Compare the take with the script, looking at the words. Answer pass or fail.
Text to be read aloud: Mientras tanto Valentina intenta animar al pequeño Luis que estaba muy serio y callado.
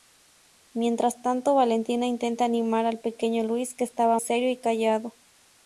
fail